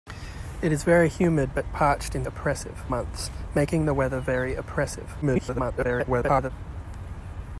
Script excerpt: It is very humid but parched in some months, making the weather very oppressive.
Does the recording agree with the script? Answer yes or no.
no